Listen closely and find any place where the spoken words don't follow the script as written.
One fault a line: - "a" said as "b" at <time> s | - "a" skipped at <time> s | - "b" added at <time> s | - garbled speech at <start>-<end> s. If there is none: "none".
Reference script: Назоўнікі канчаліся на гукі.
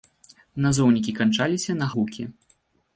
none